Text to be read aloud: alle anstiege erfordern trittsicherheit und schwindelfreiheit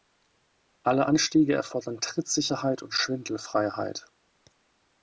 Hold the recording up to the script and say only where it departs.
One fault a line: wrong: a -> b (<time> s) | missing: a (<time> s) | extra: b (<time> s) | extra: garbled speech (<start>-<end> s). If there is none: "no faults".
no faults